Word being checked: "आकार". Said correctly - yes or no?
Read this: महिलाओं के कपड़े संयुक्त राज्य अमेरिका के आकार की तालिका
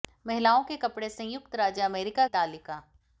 no